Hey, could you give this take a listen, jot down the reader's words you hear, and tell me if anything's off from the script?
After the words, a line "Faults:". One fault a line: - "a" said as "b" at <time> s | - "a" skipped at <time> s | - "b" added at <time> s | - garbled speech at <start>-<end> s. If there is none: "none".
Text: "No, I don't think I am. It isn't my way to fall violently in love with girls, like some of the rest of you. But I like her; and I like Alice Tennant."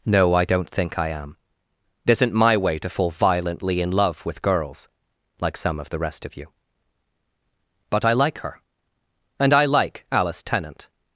"No, I don't think I am. It isn't my way to fall violently in love with girls, like some of the rest of you. But I like her; and I like Alice Tennant."
Faults:
none